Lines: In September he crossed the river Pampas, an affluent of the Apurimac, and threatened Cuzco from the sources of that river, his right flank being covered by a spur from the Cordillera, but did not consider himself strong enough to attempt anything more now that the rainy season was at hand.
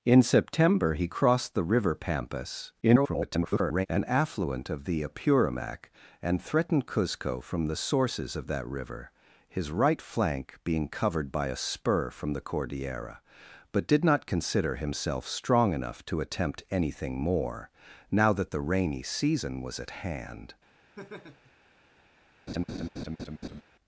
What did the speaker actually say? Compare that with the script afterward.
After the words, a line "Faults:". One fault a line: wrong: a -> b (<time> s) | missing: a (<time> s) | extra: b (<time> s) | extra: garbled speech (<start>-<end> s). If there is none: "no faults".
In September he crossed the river Pampas, [garbled] an affluent of the Apurimac, and threatened Cuzco from the sources of that river, his right flank being covered by a spur from the Cordillera, but did not consider himself strong enough to attempt anything more now that the rainy season was at hand.
Faults:
extra: garbled speech (2.8-3.9 s)